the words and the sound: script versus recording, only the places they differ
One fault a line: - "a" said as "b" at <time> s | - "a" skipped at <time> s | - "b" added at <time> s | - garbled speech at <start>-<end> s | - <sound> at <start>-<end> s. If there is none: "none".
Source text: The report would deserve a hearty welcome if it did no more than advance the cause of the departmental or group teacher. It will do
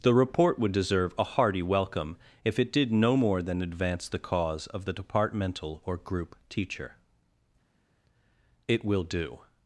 none